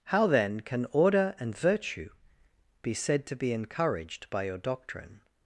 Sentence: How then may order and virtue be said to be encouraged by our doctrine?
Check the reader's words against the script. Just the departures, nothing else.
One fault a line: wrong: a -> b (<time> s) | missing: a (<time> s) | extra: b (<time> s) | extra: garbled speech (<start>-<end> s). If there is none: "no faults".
wrong: may -> can (0.6 s)
wrong: our -> your (4.4 s)